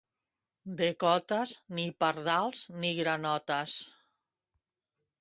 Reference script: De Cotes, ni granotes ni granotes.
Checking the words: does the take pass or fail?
fail